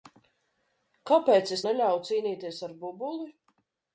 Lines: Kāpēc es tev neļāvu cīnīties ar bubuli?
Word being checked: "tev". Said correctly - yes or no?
no